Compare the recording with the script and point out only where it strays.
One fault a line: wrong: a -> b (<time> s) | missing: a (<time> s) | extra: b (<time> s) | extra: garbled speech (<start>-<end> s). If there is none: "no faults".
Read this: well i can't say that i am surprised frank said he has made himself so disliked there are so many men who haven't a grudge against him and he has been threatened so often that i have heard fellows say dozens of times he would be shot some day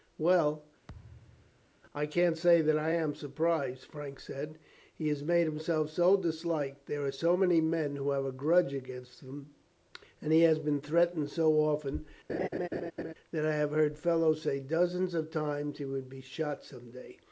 wrong: haven't -> have (8.1 s)